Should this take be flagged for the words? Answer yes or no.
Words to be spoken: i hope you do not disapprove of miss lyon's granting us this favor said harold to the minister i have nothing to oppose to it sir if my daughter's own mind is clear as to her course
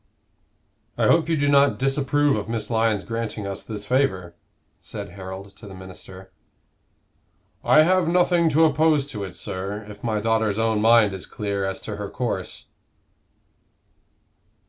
no